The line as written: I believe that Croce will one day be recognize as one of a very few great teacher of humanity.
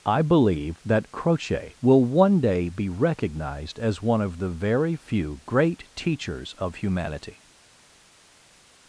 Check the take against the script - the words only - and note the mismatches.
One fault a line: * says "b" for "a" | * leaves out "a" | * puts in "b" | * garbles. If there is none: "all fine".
* says "recognized" for "recognize"
* says "the" for "a"
* says "teachers" for "teacher"